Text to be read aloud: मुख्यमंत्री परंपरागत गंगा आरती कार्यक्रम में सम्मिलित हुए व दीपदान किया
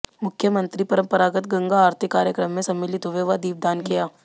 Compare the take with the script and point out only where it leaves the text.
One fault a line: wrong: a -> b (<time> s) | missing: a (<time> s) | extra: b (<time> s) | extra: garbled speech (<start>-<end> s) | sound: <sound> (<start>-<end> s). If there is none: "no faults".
no faults